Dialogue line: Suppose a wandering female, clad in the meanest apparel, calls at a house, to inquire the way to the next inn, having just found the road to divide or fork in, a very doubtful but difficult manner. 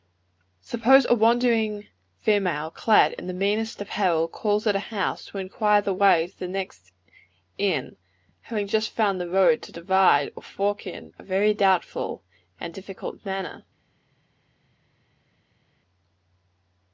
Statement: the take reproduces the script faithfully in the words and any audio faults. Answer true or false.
false